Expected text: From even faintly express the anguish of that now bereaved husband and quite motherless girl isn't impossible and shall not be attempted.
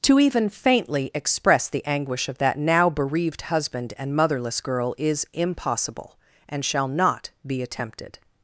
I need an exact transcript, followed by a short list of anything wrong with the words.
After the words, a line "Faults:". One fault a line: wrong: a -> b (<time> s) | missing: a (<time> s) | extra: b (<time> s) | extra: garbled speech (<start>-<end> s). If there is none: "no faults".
To even faintly express the anguish of that now bereaved husband and motherless girl is impossible and shall not be attempted.
Faults:
wrong: From -> To (0.0 s)
missing: quite (4.2 s)
wrong: isn't -> is (5.0 s)